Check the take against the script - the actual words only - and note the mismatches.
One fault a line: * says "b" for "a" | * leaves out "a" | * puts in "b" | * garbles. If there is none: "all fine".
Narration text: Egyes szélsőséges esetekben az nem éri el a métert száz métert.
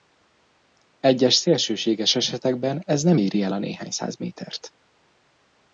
* says "ez" for "az"
* says "néhány" for "métert"